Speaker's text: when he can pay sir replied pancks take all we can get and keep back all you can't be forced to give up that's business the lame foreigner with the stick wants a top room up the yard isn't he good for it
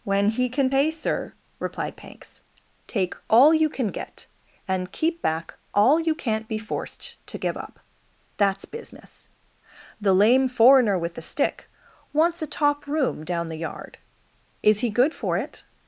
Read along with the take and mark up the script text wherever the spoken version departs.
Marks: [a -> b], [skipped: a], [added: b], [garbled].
when he can pay sir replied pancks take all [we -> you] can get and keep back all you can't be forced to give up that's business the lame foreigner with the stick wants a top room [up -> down] the yard [isn't -> is] he good for it